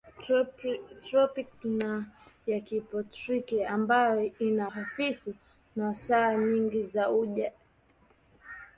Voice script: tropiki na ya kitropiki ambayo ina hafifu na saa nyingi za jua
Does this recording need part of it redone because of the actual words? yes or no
no